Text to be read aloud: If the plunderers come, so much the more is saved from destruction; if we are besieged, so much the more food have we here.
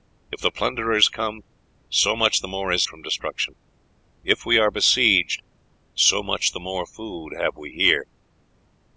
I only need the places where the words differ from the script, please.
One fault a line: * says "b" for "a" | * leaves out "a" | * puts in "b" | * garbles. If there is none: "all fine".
* leaves out "saved"